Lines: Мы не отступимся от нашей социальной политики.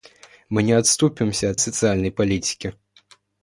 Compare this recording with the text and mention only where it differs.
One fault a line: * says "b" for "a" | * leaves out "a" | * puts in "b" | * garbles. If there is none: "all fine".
* leaves out "нашей"